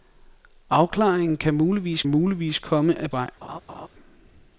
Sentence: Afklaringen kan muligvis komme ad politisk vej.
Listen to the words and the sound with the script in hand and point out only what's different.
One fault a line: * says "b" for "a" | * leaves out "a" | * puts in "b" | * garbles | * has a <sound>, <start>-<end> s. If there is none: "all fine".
* puts in "muligvis"
* leaves out "politisk"
* has a laugh, 3.4-3.9 s